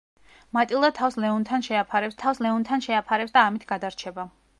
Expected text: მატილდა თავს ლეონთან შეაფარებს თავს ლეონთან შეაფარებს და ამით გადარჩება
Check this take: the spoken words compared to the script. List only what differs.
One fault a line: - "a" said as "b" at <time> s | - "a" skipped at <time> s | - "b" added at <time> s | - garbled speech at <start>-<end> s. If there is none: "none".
none